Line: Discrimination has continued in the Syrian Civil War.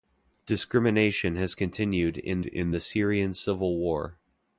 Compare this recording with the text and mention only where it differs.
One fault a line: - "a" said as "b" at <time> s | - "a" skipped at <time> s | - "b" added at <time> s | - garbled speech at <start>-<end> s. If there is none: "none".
- "in" added at 2.4 s